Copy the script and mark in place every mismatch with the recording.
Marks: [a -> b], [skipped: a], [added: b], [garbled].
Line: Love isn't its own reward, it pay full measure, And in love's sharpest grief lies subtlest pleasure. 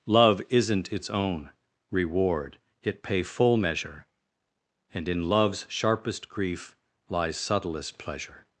Love isn't its own reward, it pay full measure, And in love's sharpest grief lies subtlest pleasure.